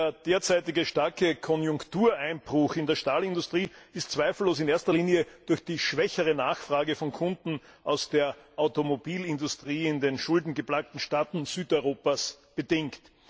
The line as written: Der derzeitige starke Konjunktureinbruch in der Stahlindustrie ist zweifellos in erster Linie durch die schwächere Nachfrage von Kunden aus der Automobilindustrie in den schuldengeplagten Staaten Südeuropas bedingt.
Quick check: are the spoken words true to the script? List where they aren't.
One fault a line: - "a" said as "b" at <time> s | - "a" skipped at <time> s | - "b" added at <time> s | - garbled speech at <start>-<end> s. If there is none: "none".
none